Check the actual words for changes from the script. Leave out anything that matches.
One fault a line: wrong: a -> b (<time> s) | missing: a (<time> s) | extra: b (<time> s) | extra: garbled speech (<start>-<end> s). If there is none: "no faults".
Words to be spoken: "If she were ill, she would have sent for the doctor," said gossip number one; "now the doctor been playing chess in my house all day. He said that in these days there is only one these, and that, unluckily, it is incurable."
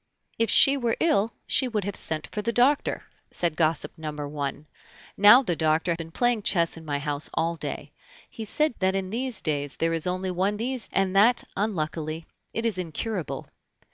no faults